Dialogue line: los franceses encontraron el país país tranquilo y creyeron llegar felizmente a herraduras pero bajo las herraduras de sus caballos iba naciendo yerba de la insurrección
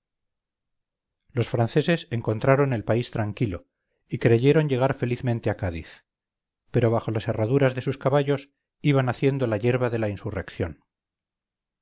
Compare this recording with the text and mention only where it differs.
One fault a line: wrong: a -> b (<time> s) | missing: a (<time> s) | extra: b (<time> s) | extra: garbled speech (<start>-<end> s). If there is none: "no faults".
missing: país (3.1 s)
wrong: herraduras -> cádiz (5.6 s)
extra: la (9.4 s)